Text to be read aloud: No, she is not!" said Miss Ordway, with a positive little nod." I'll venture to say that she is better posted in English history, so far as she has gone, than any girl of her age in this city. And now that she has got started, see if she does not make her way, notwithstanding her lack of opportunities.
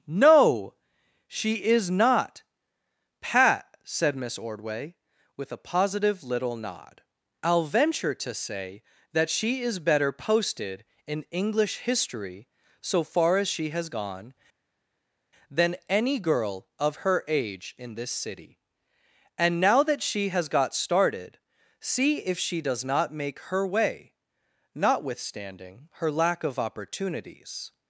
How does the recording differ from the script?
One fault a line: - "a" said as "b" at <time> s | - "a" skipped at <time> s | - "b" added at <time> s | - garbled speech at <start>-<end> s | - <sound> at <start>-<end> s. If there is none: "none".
- "pat" added at 3.2 s